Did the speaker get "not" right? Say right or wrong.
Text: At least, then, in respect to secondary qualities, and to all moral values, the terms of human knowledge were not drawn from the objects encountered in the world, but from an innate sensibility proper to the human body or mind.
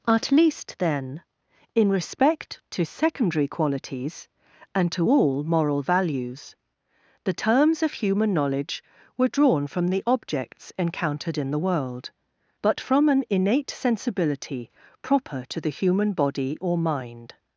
wrong